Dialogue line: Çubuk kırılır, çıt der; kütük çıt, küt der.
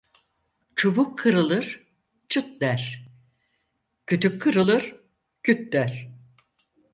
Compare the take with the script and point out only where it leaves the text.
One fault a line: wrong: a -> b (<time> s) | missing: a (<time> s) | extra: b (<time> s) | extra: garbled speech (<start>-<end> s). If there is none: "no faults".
wrong: çıt -> kırılır (4.4 s)